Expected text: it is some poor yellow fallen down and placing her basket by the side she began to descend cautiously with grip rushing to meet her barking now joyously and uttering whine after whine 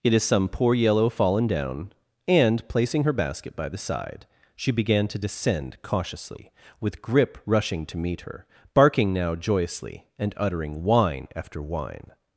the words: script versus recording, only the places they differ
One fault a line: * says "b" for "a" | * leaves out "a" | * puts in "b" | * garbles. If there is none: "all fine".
all fine